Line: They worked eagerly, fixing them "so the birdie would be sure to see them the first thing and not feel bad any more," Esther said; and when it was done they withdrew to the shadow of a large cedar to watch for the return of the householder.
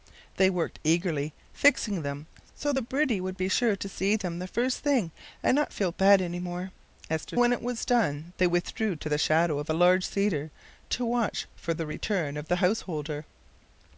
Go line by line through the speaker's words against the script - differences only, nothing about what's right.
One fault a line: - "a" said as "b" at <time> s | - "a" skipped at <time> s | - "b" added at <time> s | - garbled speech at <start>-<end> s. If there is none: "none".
- "said and" skipped at 7.4 s